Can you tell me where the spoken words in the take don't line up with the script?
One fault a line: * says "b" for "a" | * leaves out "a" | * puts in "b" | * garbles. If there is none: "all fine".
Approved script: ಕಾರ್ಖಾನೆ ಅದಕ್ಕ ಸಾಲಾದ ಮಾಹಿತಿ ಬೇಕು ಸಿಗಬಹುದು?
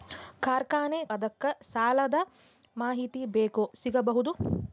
all fine